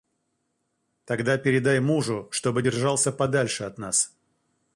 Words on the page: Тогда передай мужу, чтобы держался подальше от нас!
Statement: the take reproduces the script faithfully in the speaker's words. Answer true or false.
true